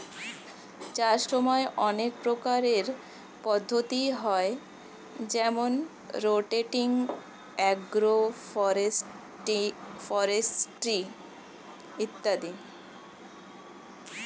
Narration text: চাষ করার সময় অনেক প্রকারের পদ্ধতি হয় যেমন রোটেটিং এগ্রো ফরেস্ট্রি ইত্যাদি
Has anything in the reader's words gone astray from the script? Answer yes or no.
yes